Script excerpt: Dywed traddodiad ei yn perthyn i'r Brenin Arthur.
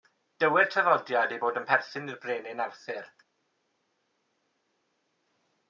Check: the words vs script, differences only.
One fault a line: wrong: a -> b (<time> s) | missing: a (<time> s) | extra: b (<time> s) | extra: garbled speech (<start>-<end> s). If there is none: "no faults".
extra: bod (1.4 s)